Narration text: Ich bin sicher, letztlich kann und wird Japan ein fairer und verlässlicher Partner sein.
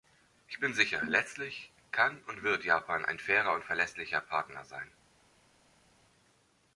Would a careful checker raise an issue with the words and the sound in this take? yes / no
no